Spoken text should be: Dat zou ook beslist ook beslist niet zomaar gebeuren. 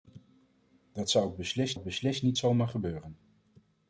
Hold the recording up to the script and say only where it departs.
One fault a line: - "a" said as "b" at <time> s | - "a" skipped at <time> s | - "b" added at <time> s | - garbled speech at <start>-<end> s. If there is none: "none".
none